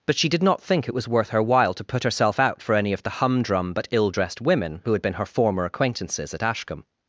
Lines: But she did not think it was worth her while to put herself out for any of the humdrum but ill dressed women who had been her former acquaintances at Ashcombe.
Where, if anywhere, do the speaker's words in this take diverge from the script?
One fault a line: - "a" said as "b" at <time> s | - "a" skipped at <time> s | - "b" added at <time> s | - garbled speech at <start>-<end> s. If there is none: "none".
none